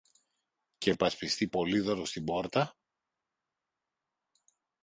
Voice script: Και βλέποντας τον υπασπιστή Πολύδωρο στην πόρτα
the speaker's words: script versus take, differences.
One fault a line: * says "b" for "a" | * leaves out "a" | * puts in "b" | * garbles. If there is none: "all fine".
* leaves out "βλέποντας τον"